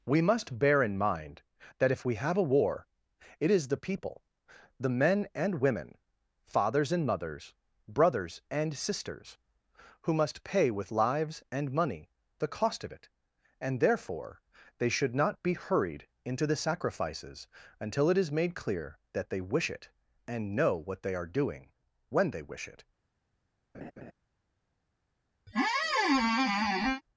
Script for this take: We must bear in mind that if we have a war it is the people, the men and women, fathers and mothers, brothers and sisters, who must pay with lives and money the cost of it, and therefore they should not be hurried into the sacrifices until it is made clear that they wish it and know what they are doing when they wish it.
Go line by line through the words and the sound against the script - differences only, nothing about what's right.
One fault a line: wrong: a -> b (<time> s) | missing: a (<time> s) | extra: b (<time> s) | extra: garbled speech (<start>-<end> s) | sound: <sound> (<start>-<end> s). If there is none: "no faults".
sound: laugh (23.7-24.1 s)
sound: squeak (25.5-27.0 s)